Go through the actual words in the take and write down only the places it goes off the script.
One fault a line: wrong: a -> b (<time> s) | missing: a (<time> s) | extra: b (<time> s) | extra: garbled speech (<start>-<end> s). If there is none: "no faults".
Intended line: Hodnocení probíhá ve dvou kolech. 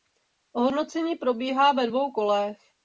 no faults